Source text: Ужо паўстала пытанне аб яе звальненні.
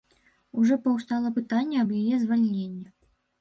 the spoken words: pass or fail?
pass